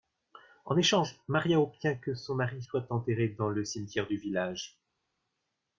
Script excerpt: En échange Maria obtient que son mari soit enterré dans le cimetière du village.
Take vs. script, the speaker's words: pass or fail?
pass